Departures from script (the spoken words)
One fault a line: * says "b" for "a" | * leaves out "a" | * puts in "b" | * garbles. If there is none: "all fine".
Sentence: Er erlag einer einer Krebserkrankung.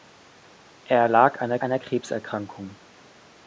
all fine